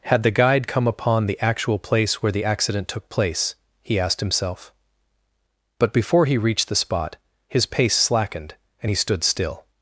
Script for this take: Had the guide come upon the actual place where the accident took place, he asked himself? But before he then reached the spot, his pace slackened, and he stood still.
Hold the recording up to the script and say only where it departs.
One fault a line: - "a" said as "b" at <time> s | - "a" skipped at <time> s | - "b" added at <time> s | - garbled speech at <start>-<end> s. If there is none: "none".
- "then" skipped at 6.4 s